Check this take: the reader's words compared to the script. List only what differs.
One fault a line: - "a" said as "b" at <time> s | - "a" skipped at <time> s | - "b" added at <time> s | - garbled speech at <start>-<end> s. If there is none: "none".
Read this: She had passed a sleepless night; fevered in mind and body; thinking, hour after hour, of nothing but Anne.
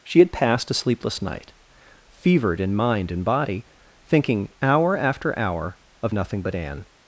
none